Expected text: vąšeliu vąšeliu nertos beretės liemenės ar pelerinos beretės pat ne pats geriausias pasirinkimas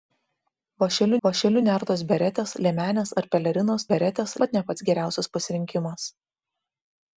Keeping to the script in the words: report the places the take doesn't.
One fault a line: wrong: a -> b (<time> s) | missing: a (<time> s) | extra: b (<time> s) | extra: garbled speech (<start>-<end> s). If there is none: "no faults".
no faults